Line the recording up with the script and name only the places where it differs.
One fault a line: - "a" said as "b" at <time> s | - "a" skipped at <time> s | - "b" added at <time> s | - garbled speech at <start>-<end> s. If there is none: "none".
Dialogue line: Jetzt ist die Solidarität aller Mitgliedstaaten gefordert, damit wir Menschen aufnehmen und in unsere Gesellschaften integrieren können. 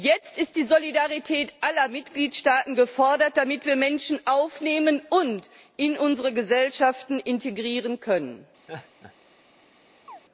none